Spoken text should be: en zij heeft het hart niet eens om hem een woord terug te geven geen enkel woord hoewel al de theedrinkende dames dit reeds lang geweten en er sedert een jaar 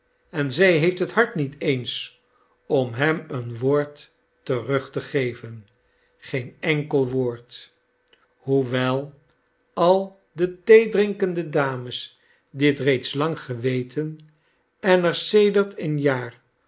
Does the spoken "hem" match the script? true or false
true